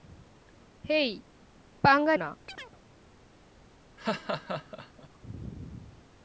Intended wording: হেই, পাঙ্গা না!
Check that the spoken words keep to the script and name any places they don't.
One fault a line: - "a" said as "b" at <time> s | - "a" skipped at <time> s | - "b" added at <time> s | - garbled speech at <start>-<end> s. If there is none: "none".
none